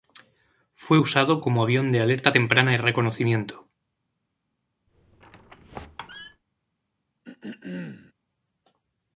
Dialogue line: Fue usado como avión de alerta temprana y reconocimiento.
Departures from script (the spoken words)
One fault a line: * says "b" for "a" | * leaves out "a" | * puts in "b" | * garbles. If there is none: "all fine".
all fine